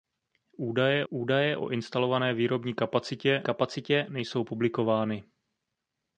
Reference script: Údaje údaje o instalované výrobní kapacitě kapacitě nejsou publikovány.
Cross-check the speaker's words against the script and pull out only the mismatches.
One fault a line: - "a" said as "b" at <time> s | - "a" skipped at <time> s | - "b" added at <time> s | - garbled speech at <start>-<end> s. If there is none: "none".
none